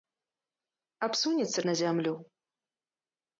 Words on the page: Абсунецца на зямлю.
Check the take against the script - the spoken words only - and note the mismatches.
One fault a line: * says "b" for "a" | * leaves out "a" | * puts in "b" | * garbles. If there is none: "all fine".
all fine